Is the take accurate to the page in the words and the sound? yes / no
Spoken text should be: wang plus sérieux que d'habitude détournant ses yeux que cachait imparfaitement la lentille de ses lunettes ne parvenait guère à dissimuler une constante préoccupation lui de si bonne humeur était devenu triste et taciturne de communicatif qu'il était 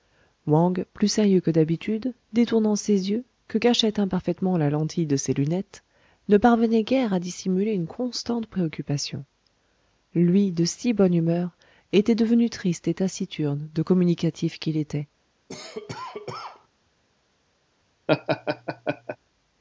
no